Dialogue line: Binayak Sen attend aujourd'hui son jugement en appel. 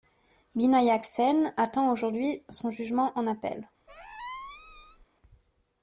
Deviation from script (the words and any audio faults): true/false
true